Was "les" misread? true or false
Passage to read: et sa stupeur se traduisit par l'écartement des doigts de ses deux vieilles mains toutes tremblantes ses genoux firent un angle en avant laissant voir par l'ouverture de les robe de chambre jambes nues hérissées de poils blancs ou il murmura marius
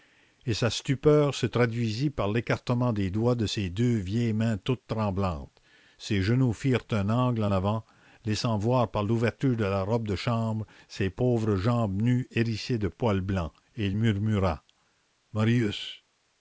true